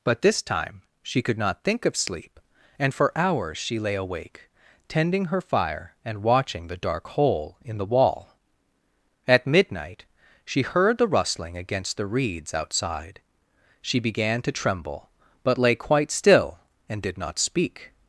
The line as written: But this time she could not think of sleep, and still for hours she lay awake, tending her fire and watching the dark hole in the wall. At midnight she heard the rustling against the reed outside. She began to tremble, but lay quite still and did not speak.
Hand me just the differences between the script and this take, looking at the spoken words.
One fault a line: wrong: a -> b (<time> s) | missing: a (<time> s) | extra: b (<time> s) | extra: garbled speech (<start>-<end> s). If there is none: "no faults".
missing: still (2.9 s)
wrong: reed -> reeds (12.1 s)